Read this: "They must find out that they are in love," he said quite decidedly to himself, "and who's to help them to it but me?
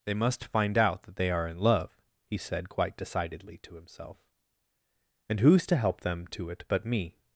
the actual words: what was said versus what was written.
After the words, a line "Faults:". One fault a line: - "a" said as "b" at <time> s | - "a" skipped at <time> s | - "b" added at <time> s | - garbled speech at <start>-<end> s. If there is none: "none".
"They must find out that they are in love," he said quite decidedly to himself, "and who's to help them to it but me?
Faults:
none